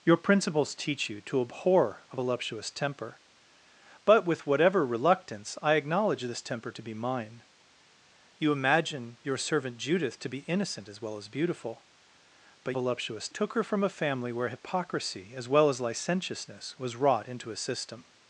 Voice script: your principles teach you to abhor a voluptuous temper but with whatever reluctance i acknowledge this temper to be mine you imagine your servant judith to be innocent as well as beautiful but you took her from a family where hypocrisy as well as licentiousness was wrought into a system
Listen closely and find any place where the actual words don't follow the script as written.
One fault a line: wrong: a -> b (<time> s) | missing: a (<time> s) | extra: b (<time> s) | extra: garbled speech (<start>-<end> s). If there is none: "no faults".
wrong: you -> voluptuous (12.7 s)